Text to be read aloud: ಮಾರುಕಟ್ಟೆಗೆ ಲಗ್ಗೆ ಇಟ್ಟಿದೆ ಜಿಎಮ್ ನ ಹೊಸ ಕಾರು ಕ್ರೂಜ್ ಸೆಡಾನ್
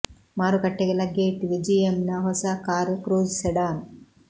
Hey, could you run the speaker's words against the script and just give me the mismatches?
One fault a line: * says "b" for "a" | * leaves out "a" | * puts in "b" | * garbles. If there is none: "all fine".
all fine